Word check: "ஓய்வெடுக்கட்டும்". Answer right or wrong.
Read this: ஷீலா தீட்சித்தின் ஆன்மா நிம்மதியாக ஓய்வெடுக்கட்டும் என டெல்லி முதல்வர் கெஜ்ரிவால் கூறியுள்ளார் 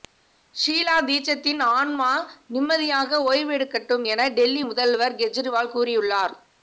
right